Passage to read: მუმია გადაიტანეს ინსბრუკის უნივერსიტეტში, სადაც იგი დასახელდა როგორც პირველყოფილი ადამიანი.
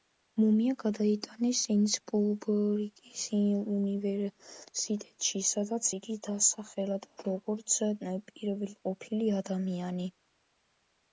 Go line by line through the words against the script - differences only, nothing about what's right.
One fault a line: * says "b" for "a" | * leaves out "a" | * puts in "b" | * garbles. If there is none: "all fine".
all fine